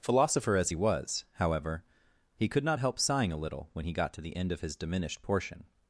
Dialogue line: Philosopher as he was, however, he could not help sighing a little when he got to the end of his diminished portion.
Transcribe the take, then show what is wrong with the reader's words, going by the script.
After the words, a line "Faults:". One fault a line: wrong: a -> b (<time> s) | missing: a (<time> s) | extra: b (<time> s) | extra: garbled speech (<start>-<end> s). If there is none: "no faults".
Philosopher as he was, however, he could not help sighing a little when he got to the end of his diminished portion.
Faults:
no faults